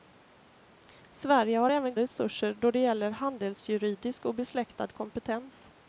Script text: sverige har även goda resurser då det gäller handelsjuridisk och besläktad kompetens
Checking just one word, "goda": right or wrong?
wrong